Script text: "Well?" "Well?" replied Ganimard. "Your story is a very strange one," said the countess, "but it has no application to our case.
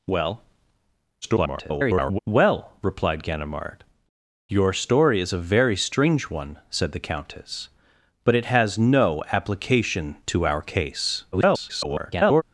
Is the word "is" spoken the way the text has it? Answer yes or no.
yes